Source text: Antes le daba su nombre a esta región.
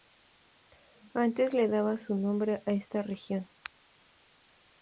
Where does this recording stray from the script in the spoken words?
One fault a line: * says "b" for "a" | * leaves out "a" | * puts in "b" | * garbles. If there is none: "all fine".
all fine